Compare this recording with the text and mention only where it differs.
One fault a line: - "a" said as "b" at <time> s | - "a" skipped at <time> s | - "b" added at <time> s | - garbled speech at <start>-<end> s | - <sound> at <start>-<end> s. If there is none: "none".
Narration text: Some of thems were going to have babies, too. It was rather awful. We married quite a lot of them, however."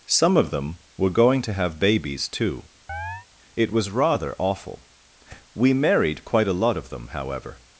- "thems" said as "them" at 0.5 s
- chirp at 2.9-3.3 s